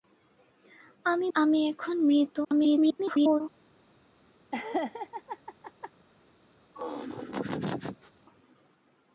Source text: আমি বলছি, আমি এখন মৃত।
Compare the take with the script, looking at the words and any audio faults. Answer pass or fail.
fail